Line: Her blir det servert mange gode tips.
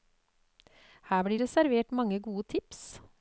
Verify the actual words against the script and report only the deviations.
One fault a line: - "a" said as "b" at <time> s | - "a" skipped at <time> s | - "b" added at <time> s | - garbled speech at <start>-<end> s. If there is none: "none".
none